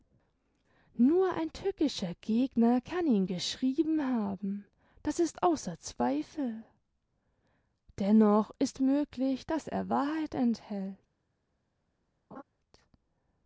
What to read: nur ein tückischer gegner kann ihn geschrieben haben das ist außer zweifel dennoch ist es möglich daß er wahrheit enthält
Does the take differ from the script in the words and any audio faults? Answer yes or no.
yes